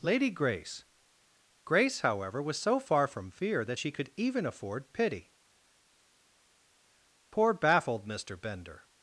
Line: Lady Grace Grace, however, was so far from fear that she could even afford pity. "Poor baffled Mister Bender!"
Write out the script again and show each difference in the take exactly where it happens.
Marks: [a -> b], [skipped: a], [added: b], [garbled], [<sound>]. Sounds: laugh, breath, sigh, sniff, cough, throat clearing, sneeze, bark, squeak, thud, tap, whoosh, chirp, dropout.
Lady Grace Grace, however, was so far from fear that she could even afford pity. "Poor baffled Mister Bender!"